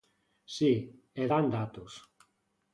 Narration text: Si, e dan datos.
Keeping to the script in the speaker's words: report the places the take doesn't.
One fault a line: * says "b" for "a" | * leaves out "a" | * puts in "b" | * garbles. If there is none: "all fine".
all fine